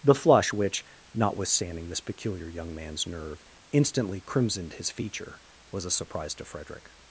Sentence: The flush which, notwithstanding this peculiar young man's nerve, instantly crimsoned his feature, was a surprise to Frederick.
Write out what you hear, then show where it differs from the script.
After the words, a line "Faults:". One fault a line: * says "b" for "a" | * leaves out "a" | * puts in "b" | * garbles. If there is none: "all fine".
The flush which, notwithstanding this peculiar young man's nerve, instantly crimsoned his feature, was a surprise to Frederick.
Faults:
all fine